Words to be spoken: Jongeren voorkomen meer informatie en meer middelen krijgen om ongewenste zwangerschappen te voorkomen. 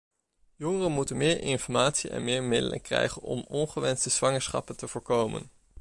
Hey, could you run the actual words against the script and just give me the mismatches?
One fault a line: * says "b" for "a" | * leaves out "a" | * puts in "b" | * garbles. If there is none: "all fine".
* says "moeten" for "voorkomen"